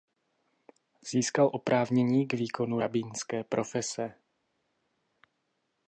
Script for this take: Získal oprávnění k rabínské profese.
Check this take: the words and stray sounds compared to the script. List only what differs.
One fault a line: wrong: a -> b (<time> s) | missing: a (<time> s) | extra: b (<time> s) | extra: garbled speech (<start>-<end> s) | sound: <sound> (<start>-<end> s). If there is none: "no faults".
extra: výkonu (2.3 s)